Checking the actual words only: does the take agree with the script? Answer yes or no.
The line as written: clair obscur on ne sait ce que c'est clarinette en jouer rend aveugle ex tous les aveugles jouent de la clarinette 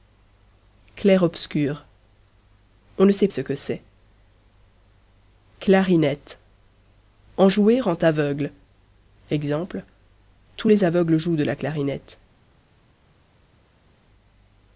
yes